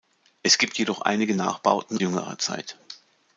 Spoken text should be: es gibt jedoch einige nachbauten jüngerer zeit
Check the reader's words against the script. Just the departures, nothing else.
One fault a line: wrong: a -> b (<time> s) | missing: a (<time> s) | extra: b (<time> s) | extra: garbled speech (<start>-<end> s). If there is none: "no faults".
no faults